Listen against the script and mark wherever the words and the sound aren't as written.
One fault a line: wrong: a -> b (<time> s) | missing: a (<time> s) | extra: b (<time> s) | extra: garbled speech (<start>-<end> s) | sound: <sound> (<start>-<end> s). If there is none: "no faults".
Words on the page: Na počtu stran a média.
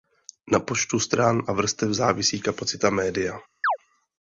extra: vrstev závisí kapacita (1.5 s)
sound: chirp (3.6-3.8 s)